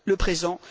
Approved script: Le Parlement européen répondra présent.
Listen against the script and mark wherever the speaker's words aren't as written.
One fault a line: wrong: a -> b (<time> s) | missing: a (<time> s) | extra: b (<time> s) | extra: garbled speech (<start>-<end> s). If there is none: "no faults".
missing: Parlement européen répondra (0.2 s)